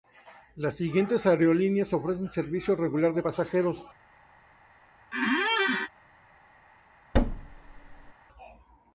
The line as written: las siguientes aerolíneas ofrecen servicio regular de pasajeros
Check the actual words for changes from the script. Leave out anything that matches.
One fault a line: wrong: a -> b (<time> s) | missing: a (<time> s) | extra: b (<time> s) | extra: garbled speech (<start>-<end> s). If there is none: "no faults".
no faults